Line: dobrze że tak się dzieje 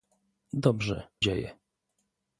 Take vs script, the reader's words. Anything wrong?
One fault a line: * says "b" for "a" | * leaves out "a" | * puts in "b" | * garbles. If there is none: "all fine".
* leaves out "że tak się"